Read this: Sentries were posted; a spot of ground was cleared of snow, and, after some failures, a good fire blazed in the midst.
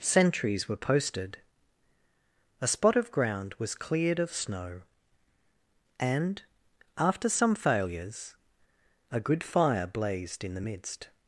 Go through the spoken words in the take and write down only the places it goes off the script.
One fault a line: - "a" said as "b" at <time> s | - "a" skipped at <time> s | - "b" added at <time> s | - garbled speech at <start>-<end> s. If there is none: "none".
none